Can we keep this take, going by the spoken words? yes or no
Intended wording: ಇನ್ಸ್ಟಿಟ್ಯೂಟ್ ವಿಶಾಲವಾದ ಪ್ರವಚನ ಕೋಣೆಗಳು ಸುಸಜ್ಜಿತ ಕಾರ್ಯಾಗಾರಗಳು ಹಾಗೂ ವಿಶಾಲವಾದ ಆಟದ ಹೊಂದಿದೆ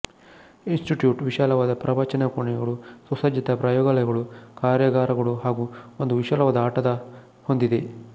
no